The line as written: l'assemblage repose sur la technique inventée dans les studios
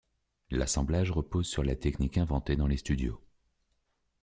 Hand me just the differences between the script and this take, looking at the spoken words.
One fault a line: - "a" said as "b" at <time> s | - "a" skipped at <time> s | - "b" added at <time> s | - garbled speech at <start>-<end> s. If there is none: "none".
none